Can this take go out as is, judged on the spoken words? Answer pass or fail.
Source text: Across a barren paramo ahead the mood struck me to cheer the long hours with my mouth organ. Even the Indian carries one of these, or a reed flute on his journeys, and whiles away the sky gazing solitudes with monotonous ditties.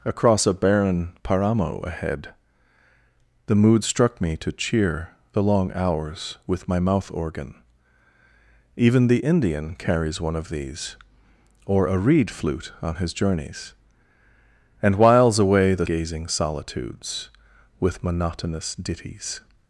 fail